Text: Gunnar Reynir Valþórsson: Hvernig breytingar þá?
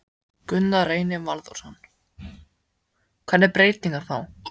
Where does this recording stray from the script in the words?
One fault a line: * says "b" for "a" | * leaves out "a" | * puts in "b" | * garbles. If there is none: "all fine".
all fine